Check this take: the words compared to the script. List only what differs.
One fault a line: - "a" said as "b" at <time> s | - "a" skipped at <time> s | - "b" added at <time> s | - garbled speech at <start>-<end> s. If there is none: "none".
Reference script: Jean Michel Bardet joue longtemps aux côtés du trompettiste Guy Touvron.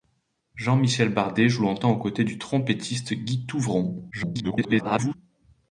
- garbled speech at 4.1-5.1 s